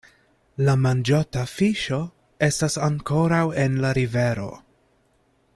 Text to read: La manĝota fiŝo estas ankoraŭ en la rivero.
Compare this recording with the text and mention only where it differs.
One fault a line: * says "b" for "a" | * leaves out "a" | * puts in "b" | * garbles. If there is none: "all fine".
all fine